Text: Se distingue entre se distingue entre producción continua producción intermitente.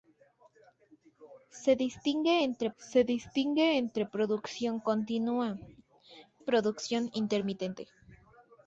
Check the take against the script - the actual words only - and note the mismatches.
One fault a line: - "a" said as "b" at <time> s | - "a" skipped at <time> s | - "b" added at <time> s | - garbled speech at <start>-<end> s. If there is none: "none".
none